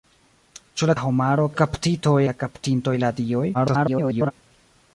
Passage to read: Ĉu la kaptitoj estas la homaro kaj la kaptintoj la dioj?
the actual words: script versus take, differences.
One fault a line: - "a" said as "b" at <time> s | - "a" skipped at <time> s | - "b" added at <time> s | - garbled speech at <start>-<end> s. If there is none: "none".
- "kaptitoj estas" skipped at 0.9 s
- "kaj" said as "kaptitoj" at 1.6 s
- garbled speech at 3.5-4.3 s